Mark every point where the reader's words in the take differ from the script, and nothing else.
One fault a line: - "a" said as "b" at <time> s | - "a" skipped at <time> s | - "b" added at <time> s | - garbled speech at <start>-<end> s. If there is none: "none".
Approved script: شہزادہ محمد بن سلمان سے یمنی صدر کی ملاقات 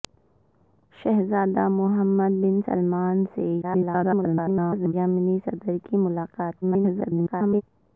- garbled speech at 3.6-4.9 s
- garbled speech at 6.6-7.6 s